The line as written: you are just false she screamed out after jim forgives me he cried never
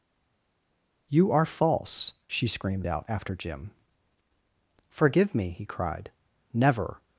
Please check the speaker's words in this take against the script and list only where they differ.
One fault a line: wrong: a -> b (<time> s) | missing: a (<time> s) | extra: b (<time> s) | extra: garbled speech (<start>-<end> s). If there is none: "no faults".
missing: just (1.4 s)
wrong: forgives -> forgive (4.9 s)